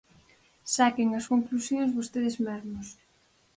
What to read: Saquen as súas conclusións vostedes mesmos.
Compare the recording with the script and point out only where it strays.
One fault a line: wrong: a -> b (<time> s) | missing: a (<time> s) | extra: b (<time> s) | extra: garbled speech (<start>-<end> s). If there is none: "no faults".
missing: súas (1.2 s)